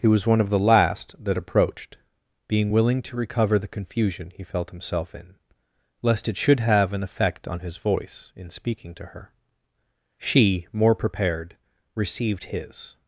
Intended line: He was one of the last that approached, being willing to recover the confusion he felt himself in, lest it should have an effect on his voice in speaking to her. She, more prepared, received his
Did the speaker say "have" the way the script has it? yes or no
yes